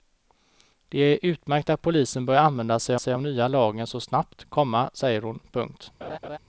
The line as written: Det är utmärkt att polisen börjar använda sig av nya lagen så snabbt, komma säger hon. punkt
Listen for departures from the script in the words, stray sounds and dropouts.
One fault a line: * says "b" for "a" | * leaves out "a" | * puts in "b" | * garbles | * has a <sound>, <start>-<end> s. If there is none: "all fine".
* puts in "sig"
* has a laugh, 6.0-6.4 s